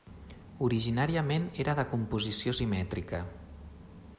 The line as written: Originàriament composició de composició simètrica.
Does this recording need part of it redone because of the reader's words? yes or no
yes